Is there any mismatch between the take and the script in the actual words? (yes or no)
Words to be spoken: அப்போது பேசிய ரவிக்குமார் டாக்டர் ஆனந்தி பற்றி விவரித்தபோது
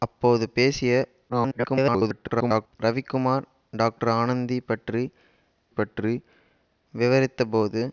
yes